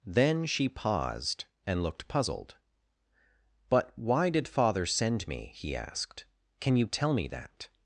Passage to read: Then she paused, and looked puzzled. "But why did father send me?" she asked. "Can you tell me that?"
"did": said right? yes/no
yes